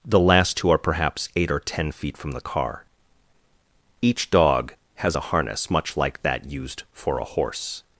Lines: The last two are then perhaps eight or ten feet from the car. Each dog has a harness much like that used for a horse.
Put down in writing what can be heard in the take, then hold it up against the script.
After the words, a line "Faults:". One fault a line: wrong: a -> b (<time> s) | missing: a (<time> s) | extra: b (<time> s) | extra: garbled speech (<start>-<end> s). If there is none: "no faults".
The last two are perhaps eight or ten feet from the car. Each dog has a harness much like that used for a horse.
Faults:
missing: then (0.8 s)